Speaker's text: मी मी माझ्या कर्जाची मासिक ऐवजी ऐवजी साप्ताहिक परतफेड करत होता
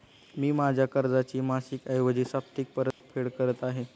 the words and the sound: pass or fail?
fail